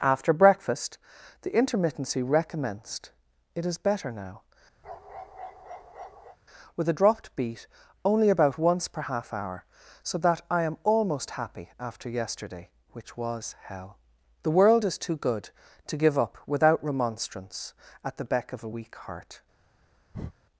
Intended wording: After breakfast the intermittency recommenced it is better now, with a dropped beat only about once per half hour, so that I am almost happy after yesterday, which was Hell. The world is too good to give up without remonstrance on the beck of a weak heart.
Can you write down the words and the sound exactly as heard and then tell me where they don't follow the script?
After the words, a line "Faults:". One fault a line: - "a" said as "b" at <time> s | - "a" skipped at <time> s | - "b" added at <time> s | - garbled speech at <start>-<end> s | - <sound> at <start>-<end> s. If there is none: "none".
After breakfast the intermittency recommenced it is better now, with a dropped beat only about once per half hour, so that I am almost happy after yesterday, which was Hell. The world is too good to give up without remonstrance at the beck of a weak heart.
Faults:
- bark at 4.8-6.4 s
- "on" said as "at" at 18.0 s
- breath at 20.1-20.3 s